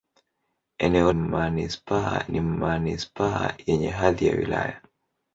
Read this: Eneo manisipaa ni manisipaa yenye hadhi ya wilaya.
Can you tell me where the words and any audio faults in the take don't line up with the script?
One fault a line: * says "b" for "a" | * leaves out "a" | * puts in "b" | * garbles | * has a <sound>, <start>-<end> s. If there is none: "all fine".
all fine